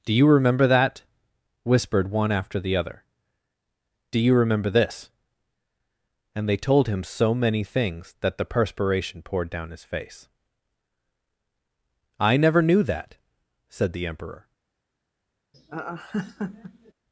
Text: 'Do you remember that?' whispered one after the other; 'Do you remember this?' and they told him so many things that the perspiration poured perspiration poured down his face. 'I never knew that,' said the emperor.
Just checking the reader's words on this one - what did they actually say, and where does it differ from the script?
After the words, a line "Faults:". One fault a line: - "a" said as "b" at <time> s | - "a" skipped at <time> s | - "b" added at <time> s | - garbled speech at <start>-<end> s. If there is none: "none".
'Do you remember that?' whispered one after the other; 'Do you remember this?' and they told him so many things that the perspiration poured down his face. 'I never knew that,' said the emperor.
Faults:
- "perspiration poured" skipped at 9.5 s